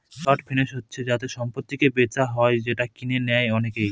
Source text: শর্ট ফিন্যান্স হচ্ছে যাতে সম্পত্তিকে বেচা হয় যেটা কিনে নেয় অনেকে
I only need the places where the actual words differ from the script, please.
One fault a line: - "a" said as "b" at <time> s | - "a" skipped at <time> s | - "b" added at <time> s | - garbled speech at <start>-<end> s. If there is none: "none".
none